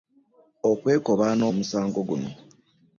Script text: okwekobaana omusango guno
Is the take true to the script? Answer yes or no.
yes